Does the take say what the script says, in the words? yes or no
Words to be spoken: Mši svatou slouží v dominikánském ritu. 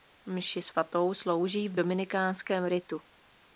yes